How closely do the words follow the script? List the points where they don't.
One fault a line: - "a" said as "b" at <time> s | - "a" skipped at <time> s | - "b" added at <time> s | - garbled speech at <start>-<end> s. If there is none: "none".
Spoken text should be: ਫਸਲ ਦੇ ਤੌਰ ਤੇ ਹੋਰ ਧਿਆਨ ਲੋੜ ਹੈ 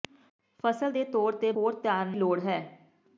none